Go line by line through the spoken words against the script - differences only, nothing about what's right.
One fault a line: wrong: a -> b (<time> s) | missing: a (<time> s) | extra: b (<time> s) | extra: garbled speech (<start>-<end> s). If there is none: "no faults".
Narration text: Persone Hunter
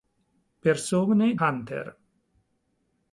no faults